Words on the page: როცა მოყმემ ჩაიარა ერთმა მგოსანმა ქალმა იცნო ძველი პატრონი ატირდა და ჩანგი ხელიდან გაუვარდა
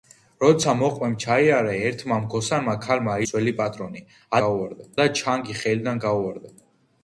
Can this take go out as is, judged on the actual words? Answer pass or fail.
fail